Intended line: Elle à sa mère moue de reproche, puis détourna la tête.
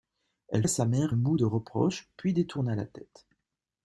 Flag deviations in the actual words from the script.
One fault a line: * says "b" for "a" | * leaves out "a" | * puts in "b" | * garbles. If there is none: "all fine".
all fine